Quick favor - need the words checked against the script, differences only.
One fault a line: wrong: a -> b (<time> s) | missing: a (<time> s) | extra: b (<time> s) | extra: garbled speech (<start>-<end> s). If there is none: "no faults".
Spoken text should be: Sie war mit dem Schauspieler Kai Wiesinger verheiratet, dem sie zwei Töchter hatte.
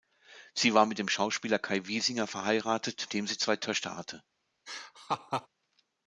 no faults